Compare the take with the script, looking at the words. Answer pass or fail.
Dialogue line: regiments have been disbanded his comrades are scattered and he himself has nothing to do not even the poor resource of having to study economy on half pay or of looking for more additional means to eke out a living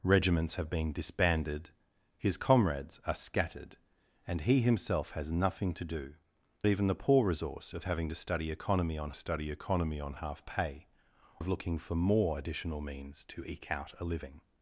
fail